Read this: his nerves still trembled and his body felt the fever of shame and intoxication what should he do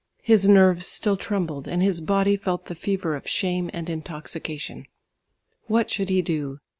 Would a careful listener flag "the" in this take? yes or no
no